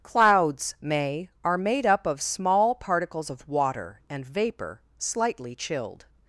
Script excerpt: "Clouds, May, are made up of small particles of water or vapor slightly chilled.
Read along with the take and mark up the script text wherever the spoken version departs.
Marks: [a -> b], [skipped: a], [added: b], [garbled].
"Clouds, May, are made up of small particles of water [or -> and] vapor slightly chilled.